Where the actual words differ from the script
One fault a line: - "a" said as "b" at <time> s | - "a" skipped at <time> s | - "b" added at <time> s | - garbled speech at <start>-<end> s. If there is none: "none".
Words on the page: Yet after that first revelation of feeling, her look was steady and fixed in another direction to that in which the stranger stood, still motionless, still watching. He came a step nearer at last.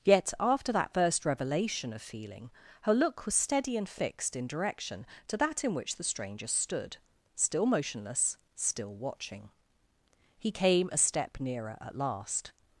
- "another" skipped at 4.5 s